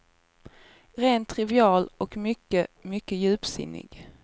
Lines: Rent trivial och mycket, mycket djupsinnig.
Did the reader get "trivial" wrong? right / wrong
right